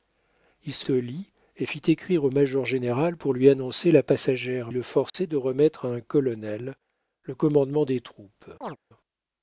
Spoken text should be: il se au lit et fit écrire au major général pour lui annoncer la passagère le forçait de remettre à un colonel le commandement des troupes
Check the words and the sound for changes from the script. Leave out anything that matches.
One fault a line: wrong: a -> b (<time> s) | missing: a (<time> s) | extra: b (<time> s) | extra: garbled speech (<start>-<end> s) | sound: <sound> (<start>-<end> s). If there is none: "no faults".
sound: dropout (5.1-5.1 s)
sound: chirp (8.6-8.8 s)